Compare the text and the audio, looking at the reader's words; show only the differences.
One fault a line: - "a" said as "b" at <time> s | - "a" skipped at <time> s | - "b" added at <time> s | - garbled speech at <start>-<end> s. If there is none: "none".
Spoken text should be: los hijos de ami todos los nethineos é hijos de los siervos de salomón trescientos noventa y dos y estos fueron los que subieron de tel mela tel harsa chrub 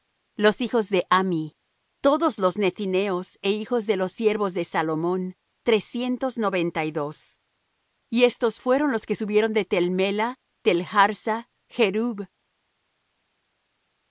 none